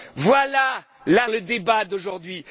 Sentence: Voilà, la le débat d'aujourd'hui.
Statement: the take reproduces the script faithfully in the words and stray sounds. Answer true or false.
true